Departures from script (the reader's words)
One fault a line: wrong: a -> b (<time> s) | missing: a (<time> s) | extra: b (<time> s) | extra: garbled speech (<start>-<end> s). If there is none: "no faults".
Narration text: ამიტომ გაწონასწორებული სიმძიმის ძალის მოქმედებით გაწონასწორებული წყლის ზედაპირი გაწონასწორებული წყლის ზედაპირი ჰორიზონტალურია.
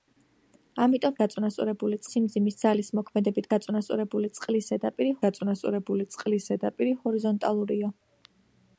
no faults